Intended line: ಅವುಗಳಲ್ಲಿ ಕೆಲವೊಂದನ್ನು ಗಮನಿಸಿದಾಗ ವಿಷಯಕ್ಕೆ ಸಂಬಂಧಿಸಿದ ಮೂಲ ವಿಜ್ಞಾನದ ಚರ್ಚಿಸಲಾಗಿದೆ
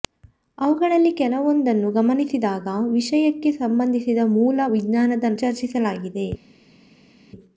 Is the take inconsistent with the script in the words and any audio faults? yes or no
no